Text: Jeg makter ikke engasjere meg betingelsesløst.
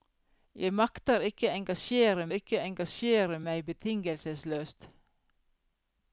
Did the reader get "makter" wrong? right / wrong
right